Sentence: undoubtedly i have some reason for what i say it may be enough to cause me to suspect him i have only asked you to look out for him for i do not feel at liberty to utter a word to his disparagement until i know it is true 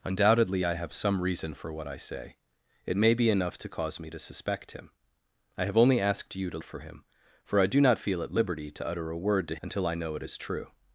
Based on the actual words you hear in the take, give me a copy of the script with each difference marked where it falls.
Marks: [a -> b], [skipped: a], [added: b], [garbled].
undoubtedly i have some reason for what i say it may be enough to cause me to suspect him i have only asked you to [skipped: look out] for him for i do not feel at liberty to utter a word to [skipped: his disparagement] until i know it is true